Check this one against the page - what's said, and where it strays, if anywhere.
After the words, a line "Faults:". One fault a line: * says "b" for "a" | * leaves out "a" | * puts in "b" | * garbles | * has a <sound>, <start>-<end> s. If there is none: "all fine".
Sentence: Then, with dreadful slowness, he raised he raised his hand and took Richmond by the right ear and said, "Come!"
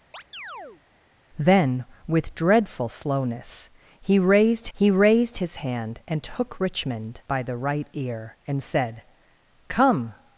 Then, with dreadful slowness, he raised he raised his hand and took Richmond by the right ear and said, "Come!"
Faults:
* has a chirp, 0.1-0.8 s